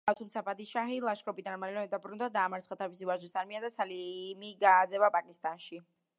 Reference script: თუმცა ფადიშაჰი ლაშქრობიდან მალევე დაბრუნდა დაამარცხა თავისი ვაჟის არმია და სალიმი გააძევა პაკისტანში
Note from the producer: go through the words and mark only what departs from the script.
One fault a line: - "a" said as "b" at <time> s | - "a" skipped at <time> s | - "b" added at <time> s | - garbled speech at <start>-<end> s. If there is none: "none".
none